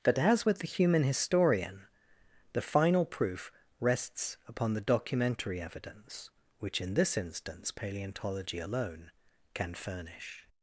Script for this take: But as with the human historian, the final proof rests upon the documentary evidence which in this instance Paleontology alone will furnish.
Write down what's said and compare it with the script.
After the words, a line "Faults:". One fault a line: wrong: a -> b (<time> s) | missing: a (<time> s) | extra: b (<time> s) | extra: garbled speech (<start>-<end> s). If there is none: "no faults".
But as with the human historian, the final proof rests upon the documentary evidence which in this instance Paleontology alone can furnish.
Faults:
wrong: will -> can (9.5 s)